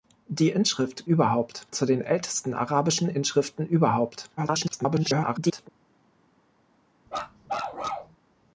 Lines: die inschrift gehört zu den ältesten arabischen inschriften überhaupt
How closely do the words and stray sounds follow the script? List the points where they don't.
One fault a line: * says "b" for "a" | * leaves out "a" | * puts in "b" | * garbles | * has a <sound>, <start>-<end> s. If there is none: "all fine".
* says "überhaupt" for "gehört"
* garbles
* has a bark, 7.1-8.2 s